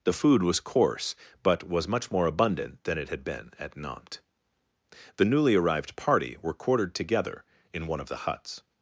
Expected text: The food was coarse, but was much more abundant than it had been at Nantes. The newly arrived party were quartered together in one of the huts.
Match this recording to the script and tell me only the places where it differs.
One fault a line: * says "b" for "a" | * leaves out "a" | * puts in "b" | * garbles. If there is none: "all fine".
all fine